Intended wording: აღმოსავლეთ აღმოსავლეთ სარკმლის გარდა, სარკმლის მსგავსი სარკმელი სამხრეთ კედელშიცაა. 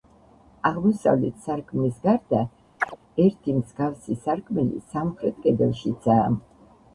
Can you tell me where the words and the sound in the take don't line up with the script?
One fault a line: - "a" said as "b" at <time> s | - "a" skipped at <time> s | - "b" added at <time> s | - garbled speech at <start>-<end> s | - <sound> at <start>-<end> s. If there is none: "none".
- "აღმოსავლეთ" skipped at 1.4 s
- chirp at 2.8-3.0 s
- "სარკმლის" said as "ერთი" at 3.3 s